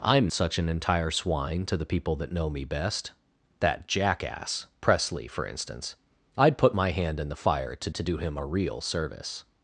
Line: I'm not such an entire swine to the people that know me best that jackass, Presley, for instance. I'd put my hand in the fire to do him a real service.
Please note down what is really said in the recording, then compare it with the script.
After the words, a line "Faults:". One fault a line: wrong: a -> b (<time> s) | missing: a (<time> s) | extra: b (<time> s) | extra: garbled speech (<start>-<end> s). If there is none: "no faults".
I'm such an entire swine to the people that know me best that jackass, Presley, for instance. I'd put my hand in the fire to to do him a real service.
Faults:
missing: not (0.3 s)
extra: to (7.9 s)